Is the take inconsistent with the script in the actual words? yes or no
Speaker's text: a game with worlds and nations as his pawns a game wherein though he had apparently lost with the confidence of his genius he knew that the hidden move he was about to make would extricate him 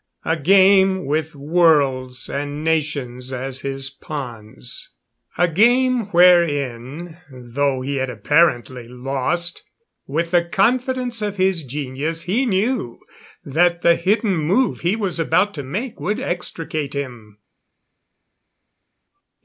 no